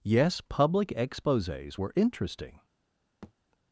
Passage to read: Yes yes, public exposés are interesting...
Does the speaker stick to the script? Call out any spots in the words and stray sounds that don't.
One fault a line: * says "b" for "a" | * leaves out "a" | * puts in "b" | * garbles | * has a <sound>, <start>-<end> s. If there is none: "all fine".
* leaves out "yes"
* says "were" for "are"
* has a thud, 3.2-3.3 s